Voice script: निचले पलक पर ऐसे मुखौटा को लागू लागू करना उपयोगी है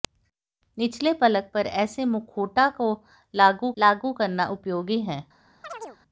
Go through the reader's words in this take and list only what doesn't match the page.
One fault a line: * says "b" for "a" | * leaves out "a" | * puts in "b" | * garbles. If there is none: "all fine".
all fine